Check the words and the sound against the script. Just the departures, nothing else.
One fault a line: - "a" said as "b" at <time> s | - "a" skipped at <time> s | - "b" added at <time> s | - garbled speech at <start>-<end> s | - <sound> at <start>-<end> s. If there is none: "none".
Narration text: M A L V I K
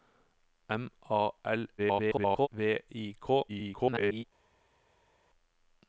- garbled speech at 1.8-2.5 s
- garbled speech at 3.5-4.2 s